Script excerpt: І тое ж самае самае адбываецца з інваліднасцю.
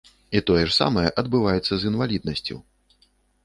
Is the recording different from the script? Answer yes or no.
yes